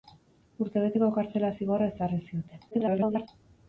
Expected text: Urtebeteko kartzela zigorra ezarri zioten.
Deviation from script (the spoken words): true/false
true